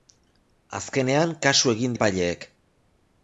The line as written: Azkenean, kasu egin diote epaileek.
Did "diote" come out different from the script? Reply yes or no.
yes